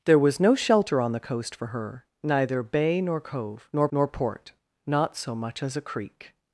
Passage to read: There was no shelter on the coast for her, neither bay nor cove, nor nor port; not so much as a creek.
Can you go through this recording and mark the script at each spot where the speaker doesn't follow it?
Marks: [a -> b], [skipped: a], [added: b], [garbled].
There was no shelter on the coast for her, neither bay nor cove, nor nor port; not so much as a creek.